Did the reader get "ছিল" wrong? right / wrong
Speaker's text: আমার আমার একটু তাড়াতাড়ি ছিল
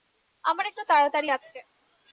wrong